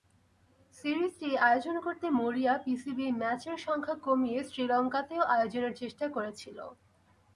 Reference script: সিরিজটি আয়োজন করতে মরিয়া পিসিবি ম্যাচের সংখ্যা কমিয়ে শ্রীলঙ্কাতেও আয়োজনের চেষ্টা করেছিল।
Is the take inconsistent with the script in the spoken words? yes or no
no